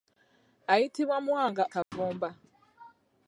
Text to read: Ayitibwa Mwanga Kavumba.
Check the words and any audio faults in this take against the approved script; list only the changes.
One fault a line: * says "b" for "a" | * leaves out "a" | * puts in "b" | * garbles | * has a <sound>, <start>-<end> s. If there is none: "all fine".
* has a dropout, 1.8-1.9 s